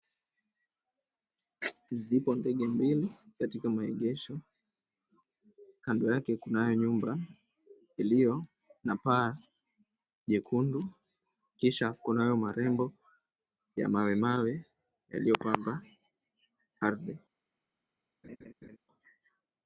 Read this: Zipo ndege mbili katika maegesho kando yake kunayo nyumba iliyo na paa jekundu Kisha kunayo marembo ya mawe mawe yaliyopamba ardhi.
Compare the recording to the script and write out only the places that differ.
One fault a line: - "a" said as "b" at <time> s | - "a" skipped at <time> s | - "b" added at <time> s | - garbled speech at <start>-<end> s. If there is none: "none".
none